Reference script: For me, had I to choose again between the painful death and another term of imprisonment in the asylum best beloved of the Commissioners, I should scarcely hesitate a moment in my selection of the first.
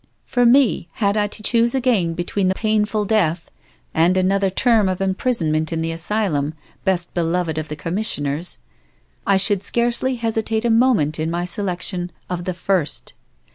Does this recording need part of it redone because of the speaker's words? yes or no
no